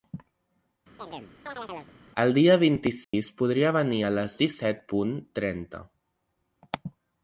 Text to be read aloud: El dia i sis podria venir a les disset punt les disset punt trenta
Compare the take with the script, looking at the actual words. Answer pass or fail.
fail